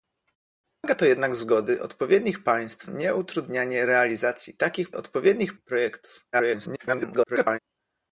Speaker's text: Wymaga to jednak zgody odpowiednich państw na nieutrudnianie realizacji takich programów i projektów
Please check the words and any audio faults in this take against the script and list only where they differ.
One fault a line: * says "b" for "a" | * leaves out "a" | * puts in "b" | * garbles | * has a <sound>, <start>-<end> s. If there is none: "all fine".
* leaves out "na"
* says "odpowiednich" for "programów"
* garbles